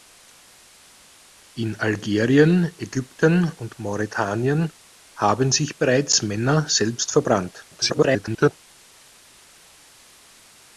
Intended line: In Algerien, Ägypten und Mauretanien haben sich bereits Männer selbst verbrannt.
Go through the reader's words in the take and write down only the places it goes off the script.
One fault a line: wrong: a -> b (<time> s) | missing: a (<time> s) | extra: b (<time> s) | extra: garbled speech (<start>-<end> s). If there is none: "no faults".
extra: garbled speech (7.7-8.6 s)